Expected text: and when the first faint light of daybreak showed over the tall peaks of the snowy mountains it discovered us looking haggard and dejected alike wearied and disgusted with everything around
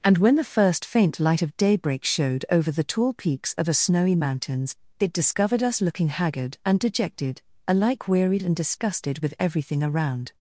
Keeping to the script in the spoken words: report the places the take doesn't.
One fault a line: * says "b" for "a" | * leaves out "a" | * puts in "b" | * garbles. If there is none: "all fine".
* says "a" for "the"